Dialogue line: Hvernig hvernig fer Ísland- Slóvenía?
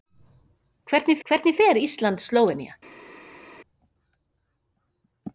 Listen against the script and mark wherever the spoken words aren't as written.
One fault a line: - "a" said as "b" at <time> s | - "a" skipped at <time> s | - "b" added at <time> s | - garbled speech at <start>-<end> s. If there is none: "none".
none